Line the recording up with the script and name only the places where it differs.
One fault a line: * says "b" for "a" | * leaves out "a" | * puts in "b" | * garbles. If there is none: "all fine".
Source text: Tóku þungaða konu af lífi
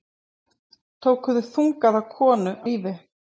* leaves out "af"